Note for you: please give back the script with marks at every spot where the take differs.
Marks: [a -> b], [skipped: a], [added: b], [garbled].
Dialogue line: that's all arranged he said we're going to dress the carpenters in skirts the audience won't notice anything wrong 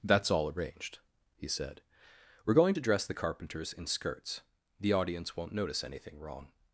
that's all arranged he said we're going to dress the carpenters in skirts the audience won't notice anything wrong